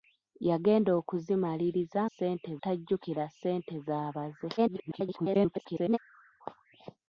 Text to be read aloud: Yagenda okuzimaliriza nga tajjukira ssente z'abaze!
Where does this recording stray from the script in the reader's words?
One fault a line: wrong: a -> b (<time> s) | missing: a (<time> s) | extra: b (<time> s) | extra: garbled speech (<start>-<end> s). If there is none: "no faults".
wrong: nga -> ssente (2.1 s)
extra: garbled speech (4.6-6.0 s)